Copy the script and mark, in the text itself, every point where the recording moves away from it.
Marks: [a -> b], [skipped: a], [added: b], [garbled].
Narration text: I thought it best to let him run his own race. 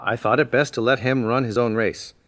I thought it best to let him run his own race.